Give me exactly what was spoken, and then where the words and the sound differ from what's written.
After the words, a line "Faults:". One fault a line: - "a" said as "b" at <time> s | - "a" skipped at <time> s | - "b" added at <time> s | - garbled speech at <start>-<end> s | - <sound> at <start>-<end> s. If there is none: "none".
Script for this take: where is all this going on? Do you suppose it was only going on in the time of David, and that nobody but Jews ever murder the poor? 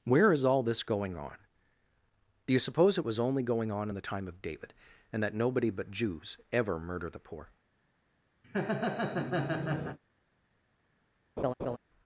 where is all this going on? Do you suppose it was only going on in the time of David, and that nobody but Jews ever murder the poor?
Faults:
- laugh at 8.4-10.0 s
- laugh at 11.4-11.8 s